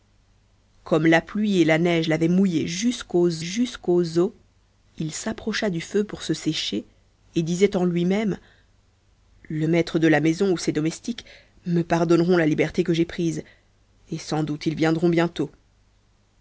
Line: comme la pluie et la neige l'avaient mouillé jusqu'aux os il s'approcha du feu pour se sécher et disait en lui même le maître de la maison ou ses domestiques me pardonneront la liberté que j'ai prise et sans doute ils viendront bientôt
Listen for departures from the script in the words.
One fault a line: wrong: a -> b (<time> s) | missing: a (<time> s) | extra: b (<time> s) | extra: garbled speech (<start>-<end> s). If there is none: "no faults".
extra: jusqu'aux (3.4 s)